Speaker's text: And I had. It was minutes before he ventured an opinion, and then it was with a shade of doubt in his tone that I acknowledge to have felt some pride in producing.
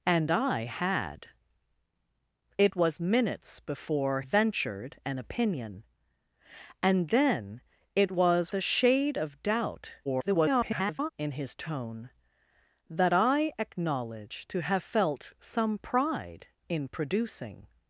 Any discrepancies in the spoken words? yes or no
yes